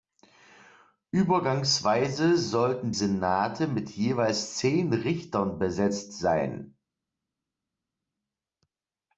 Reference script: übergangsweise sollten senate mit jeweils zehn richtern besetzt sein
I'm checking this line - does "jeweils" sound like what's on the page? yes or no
yes